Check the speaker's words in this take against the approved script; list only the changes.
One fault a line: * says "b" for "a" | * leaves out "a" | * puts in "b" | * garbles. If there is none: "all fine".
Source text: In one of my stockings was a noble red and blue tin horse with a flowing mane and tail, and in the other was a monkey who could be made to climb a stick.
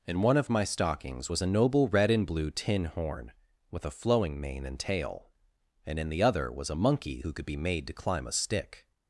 * says "horn" for "horse"